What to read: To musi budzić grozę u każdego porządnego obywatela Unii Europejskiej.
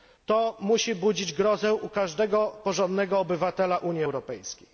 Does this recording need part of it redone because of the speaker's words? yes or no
no